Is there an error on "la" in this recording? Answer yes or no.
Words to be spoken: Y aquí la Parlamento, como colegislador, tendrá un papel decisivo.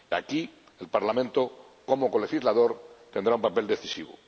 yes